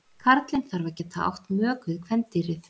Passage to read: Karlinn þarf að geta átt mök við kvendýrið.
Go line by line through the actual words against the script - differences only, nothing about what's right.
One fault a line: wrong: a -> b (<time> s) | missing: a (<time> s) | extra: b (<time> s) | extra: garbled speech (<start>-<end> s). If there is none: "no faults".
no faults